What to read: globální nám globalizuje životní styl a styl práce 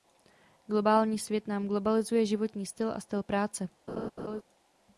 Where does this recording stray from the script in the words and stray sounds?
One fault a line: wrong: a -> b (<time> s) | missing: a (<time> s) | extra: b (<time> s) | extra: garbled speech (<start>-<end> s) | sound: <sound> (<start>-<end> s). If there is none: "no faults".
extra: svět (1.2 s)
sound: laugh (3.9-4.4 s)